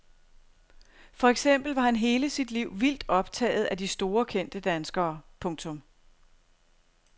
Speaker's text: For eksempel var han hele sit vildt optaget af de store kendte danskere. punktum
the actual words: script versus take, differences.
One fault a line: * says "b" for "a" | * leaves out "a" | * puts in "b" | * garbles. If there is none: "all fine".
* puts in "liv"